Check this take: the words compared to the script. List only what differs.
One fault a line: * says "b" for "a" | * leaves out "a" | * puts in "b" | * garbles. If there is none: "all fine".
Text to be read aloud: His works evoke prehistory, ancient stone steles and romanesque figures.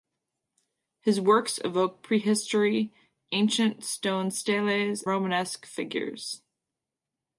* leaves out "and"